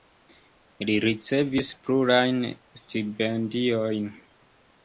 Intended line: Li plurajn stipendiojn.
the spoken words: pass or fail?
fail